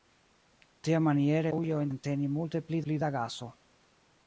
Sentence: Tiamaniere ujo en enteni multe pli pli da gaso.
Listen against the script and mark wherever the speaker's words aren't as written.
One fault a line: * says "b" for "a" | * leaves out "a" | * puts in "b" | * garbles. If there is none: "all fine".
all fine